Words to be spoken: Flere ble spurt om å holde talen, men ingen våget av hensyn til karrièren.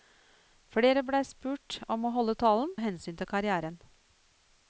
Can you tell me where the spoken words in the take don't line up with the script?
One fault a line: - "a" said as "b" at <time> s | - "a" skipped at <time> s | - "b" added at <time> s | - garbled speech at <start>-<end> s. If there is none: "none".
- "men ingen våget" skipped at 2.7 s